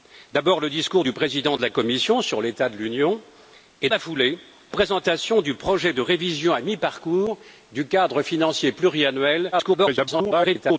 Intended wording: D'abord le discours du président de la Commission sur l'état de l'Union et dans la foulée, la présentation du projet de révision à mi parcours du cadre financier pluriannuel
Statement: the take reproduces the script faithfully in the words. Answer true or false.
false